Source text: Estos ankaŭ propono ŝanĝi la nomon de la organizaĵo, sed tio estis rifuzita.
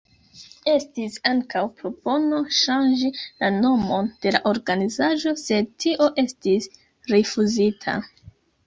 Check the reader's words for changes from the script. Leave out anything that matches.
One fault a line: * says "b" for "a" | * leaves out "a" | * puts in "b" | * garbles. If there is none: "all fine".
* says "Estis" for "Estos"